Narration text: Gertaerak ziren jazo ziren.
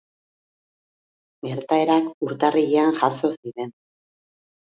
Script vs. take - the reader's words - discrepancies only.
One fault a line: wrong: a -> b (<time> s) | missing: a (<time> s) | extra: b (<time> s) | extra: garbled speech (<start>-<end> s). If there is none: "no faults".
wrong: ziren -> urtarrilean (2.3 s)